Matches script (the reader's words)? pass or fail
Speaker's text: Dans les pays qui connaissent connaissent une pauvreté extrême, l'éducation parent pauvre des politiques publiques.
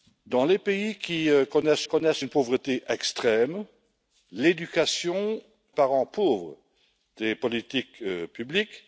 pass